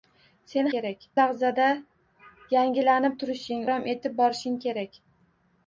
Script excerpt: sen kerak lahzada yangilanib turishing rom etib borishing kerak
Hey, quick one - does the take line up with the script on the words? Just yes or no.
yes